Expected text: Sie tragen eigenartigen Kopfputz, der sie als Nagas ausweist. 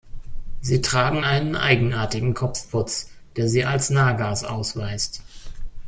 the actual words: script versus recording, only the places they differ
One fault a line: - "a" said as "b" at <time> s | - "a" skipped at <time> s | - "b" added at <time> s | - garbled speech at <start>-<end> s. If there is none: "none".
- "einen" added at 1.2 s